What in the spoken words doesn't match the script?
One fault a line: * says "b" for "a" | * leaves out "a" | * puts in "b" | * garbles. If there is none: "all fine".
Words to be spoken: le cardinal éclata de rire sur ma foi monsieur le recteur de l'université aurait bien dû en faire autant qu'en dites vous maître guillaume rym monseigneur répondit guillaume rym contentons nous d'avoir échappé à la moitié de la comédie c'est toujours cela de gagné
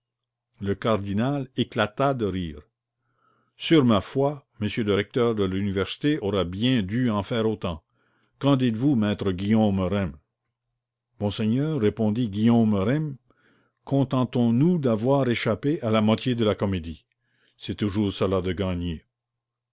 all fine